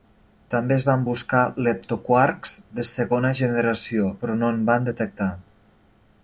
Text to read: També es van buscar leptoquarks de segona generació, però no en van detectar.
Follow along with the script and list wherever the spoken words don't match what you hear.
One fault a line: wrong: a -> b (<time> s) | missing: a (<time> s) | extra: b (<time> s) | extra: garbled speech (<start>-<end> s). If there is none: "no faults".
no faults